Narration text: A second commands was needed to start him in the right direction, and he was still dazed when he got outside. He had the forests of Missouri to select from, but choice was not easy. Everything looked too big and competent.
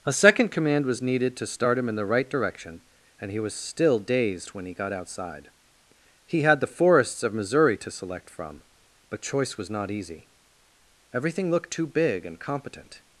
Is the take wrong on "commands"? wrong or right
wrong